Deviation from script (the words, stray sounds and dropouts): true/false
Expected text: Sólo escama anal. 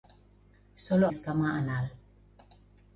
false